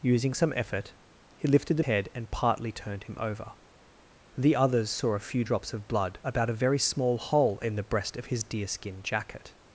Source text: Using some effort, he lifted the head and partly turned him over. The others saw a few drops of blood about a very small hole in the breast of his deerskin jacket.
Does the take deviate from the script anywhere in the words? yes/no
no